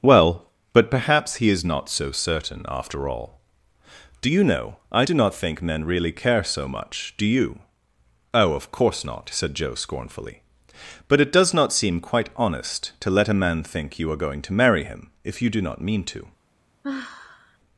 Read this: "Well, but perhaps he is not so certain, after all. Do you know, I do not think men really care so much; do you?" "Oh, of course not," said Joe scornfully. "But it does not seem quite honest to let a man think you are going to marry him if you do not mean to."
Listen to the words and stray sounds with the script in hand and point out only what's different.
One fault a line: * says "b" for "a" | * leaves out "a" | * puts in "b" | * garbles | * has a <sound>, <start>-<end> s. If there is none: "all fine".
* has a sigh, 16.8-17.6 s